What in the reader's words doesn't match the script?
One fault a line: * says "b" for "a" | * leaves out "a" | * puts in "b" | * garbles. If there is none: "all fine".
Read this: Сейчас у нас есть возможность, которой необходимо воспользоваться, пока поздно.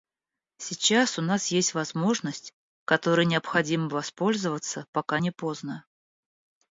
* puts in "не"